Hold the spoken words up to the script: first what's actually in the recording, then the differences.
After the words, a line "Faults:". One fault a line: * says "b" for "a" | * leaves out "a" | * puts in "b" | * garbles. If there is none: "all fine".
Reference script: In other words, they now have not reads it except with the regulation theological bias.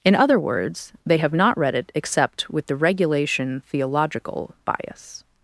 In other words, they have not read it except with the regulation theological bias.
Faults:
* leaves out "now"
* says "read" for "reads"